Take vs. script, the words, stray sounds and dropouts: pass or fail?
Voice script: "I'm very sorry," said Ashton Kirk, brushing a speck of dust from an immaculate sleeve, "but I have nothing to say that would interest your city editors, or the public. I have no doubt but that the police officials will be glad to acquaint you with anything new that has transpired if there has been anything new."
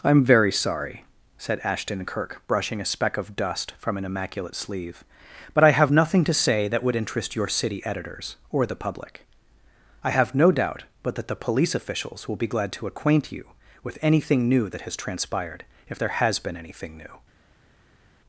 pass